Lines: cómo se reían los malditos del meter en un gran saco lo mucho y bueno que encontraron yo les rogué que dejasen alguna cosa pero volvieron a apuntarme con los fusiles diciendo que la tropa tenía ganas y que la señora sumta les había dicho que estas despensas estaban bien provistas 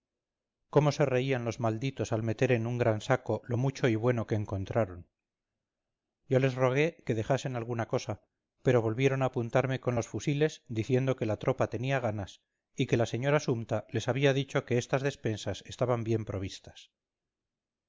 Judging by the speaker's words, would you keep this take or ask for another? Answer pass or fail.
fail